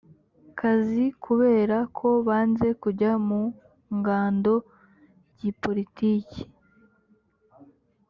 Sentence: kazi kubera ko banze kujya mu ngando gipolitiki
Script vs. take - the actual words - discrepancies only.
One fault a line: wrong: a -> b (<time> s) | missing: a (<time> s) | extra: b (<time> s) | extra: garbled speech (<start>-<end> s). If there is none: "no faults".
no faults